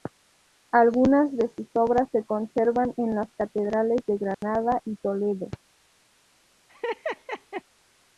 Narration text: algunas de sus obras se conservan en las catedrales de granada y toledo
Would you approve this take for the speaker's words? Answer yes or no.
yes